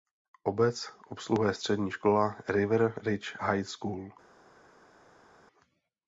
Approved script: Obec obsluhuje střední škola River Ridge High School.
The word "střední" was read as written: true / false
true